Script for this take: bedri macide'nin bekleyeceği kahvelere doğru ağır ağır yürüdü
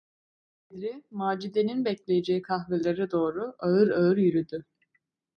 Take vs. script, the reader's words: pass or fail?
pass